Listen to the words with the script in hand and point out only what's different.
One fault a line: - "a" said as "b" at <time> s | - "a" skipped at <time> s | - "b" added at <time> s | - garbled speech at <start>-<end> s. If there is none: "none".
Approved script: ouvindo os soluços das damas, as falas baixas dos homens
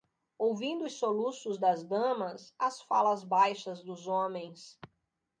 none